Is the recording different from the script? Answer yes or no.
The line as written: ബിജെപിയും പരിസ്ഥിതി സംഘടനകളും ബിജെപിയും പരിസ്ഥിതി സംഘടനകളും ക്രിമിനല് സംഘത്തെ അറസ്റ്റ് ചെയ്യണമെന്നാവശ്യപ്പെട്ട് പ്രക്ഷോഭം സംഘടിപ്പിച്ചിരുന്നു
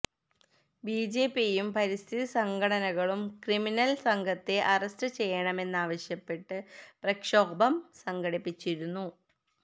yes